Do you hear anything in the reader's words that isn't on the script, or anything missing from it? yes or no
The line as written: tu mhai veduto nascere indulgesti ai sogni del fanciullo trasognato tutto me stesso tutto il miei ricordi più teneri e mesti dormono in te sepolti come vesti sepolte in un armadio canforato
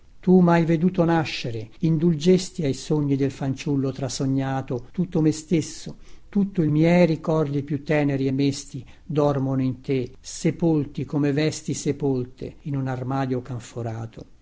no